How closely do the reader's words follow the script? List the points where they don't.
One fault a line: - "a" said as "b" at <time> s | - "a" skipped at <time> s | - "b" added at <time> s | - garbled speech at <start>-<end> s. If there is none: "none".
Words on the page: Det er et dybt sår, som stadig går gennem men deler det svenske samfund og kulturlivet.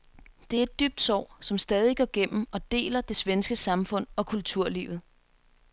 - "men" said as "og" at 2.5 s